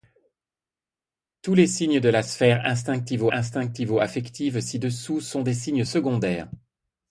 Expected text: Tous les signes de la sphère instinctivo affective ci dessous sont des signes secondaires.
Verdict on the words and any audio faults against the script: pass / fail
fail